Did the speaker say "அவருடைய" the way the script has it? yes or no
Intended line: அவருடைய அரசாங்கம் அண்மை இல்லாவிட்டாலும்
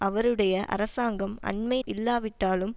yes